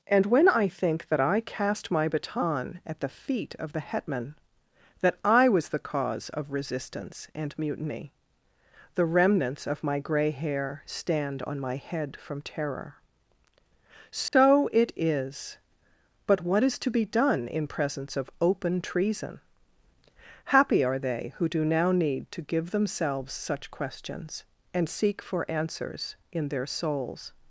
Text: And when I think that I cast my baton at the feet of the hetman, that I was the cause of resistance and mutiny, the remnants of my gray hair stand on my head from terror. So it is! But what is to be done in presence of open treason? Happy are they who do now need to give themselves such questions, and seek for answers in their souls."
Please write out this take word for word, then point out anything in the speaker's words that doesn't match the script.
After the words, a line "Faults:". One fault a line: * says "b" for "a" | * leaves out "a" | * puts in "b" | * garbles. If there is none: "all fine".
And when I think that I cast my baton at the feet of the hetman, that I was the cause of resistance and mutiny, the remnants of my gray hair stand on my head from terror. So it is! But what is to be done in presence of open treason? Happy are they who do now need to give themselves such questions, and seek for answers in their souls."
Faults:
all fine